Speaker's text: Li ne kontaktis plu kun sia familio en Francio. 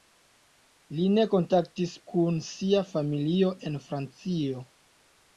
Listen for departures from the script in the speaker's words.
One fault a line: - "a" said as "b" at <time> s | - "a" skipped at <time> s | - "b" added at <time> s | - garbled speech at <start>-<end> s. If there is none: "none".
- "plu" skipped at 2.0 s